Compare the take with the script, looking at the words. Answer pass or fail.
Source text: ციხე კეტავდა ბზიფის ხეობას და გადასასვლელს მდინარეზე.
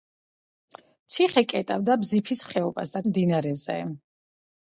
fail